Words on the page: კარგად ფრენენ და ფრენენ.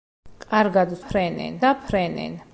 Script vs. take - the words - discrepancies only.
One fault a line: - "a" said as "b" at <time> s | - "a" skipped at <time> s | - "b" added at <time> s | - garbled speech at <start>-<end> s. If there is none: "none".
none